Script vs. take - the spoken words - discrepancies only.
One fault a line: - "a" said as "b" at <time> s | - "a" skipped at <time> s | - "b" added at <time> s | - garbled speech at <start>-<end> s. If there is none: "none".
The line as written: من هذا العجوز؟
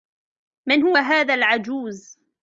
- "هو" added at 0.8 s